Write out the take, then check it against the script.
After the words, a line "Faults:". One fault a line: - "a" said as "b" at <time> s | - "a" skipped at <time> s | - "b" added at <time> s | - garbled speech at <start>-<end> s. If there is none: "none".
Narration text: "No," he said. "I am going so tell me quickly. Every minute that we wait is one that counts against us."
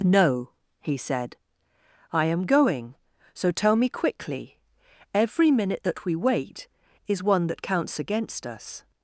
"No," he said. "I am going so tell me quickly. Every minute that we wait is one that counts against us."
Faults:
none